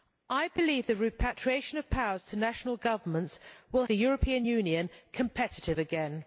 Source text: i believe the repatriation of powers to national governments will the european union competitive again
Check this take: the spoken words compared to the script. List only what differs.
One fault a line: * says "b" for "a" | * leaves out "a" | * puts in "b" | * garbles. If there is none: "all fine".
all fine